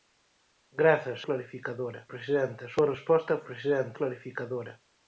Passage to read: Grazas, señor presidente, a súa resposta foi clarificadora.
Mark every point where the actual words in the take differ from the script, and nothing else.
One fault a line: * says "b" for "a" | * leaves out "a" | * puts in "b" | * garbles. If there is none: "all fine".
* says "clarificadora" for "señor"
* says "presidente" for "foi"